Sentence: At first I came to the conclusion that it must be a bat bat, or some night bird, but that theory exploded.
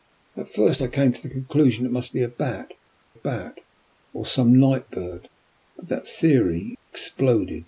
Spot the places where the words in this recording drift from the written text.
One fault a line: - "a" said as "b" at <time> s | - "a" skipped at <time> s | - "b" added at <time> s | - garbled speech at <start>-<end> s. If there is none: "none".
none